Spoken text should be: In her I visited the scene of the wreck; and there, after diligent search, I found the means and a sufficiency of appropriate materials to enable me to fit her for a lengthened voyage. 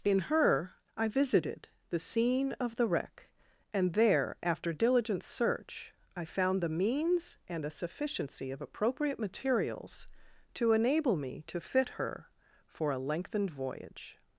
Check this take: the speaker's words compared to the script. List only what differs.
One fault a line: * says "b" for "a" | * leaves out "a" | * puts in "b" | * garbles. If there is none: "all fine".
all fine